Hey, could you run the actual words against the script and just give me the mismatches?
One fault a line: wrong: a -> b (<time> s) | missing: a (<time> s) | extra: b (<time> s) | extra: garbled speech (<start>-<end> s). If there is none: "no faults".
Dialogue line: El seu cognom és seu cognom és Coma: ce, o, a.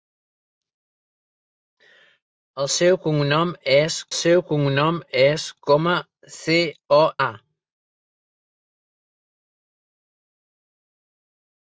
no faults